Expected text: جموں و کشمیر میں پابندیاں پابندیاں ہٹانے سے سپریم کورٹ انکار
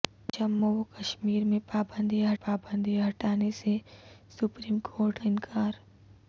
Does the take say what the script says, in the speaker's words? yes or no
yes